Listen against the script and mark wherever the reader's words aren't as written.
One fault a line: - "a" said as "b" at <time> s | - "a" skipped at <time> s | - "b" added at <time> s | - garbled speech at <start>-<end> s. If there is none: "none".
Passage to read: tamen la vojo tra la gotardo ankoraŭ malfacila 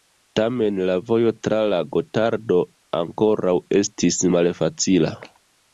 - "estis" added at 3.8 s